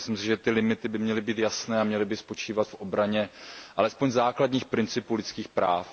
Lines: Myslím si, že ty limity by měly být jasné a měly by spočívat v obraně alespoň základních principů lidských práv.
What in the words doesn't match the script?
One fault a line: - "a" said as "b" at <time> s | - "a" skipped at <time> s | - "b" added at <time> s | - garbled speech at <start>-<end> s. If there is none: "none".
none